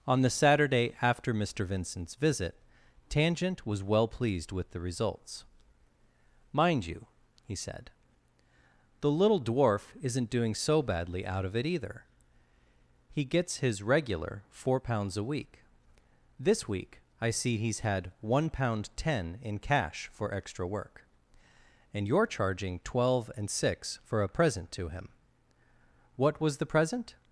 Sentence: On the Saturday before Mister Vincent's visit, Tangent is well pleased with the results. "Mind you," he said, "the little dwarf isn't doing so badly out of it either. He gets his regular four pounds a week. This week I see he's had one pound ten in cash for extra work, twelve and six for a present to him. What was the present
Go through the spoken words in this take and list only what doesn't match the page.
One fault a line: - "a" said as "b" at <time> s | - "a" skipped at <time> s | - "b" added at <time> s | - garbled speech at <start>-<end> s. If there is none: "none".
- "before" said as "after" at 1.0 s
- "is" said as "was" at 3.7 s
- "and you're charging" added at 21.9 s